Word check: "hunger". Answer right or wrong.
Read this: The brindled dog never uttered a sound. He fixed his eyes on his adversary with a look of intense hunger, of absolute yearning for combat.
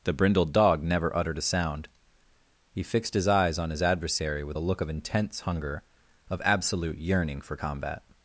right